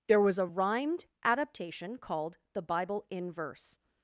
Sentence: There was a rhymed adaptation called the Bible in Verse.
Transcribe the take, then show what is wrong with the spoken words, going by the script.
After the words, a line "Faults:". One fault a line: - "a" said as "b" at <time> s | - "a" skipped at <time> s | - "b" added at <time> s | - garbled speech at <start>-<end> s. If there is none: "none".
There was a rhymed adaptation called the Bible in Verse.
Faults:
none